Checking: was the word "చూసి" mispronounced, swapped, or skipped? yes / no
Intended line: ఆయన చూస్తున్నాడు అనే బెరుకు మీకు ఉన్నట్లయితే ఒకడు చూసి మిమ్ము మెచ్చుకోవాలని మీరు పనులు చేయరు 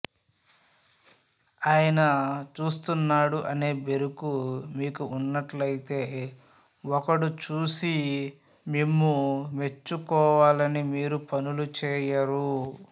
no